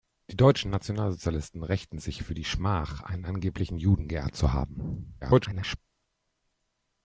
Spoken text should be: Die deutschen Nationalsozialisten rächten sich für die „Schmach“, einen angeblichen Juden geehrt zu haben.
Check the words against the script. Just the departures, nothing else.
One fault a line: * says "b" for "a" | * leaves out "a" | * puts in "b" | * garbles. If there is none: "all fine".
* garbles